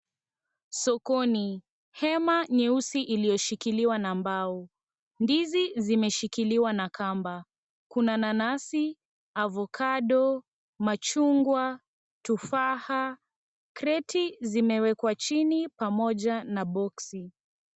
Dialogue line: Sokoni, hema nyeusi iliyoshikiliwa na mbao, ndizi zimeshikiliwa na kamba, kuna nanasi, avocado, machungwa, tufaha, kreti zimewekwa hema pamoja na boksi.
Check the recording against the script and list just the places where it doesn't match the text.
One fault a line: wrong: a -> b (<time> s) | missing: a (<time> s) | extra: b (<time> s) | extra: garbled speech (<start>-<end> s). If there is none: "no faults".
wrong: hema -> chini (15.1 s)